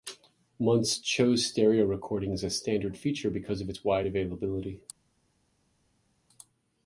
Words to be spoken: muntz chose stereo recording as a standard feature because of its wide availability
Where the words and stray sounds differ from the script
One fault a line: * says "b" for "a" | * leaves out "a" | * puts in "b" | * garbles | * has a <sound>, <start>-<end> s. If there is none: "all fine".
all fine